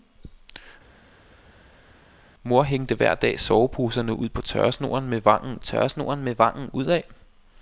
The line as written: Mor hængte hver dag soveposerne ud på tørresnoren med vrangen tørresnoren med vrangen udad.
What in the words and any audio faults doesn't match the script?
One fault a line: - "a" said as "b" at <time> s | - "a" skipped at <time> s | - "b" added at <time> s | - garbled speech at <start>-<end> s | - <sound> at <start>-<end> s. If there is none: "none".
none